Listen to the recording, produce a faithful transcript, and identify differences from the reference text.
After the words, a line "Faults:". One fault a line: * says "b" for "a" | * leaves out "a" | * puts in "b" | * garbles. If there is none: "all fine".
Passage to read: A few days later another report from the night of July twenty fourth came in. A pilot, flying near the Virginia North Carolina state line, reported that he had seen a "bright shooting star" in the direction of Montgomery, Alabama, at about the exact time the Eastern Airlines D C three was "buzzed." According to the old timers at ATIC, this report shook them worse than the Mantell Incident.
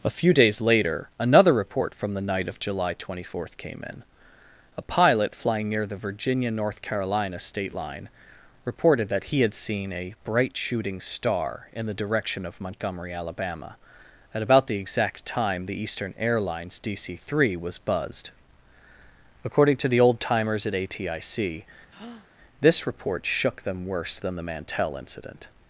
A few days later another report from the night of July twenty fourth came in. A pilot, flying near the Virginia North Carolina state line, reported that he had seen a "bright shooting star" in the direction of Montgomery, Alabama, at about the exact time the Eastern Airlines D C three was "buzzed." According to the old timers at ATIC, this report shook them worse than the Mantell Incident.
Faults:
all fine